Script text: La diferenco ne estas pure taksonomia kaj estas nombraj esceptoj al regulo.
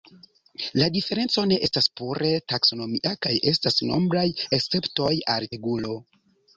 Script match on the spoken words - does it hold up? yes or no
yes